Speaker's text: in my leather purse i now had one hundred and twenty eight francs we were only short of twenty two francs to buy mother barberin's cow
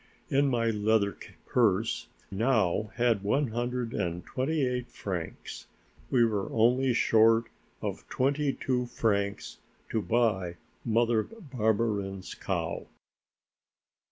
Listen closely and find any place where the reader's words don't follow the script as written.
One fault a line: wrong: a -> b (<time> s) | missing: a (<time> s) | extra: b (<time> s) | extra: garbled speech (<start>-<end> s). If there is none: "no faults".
missing: i (2.1 s)